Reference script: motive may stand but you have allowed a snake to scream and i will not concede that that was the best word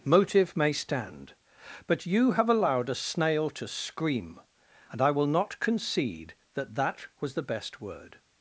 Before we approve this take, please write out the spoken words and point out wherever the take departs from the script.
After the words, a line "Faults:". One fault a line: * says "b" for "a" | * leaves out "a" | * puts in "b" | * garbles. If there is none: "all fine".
motive may stand but you have allowed a snail to scream and i will not concede that that was the best word
Faults:
* says "snail" for "snake"